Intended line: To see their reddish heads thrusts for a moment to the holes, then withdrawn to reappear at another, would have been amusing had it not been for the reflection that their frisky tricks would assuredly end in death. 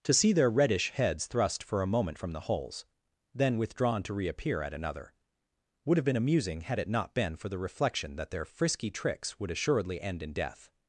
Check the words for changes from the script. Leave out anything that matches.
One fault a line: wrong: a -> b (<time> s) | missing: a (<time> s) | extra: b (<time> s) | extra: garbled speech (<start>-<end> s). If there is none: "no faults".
wrong: thrusts -> thrust (1.3 s)
wrong: to -> from (2.2 s)